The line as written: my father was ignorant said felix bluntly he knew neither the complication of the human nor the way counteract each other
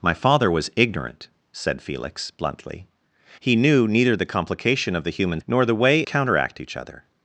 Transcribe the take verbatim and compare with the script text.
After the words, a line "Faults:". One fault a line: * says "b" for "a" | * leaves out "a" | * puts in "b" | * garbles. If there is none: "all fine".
my father was ignorant said felix bluntly he knew neither the complication of the human nor the way counteract each other
Faults:
all fine